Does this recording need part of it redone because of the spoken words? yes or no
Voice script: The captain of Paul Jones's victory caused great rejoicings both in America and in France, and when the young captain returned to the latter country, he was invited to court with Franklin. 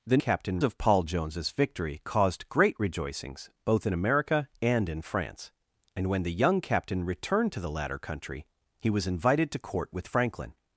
no